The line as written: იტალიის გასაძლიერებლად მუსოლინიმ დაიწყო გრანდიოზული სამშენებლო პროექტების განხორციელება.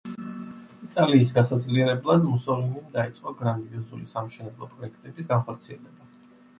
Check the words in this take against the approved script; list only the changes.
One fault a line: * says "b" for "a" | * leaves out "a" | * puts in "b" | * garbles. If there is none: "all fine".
all fine